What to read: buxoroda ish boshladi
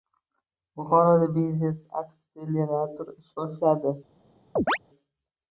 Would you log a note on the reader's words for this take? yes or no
yes